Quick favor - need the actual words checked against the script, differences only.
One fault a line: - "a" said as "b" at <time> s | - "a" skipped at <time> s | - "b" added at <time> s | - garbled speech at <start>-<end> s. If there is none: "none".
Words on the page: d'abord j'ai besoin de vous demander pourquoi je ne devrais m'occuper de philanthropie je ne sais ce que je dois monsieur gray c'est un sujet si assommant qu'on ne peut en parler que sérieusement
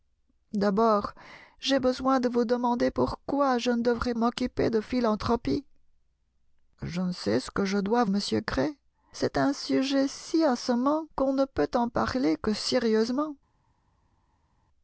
none